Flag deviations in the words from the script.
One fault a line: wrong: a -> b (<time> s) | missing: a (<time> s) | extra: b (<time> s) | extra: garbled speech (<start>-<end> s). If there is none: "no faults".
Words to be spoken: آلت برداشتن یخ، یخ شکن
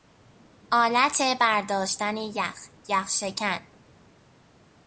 no faults